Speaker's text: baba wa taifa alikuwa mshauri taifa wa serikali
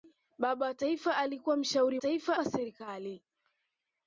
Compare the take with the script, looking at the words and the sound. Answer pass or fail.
pass